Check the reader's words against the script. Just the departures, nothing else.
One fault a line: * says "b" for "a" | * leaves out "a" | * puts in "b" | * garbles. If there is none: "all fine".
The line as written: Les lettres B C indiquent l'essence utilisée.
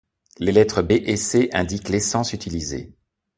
* puts in "et"